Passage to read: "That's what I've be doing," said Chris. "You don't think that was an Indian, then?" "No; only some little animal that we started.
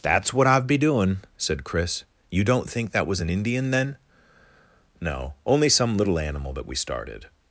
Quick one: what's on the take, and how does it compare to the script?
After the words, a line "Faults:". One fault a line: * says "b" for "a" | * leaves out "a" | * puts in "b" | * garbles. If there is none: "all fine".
"That's what I've be doing," said Chris. "You don't think that was an Indian, then?" "No; only some little animal that we started.
Faults:
all fine